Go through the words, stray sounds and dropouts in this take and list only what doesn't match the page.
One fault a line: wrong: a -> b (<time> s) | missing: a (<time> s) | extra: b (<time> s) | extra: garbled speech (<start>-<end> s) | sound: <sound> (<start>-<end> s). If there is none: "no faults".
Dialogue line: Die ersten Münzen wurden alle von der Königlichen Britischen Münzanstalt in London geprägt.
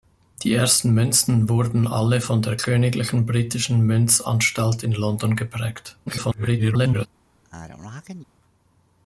extra: garbled speech (6.1-7.1 s)
sound: sneeze (7.4-8.2 s)